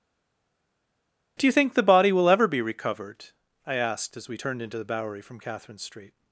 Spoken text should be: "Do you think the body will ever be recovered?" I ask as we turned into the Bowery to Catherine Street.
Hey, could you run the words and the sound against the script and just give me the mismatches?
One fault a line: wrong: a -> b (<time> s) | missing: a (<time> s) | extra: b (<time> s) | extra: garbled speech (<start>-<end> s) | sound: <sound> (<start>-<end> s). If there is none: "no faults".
wrong: ask -> asked (3.7 s)
wrong: to -> from (5.2 s)